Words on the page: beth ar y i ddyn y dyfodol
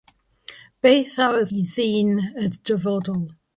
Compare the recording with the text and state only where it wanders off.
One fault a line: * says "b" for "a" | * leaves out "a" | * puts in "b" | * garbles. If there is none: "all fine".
all fine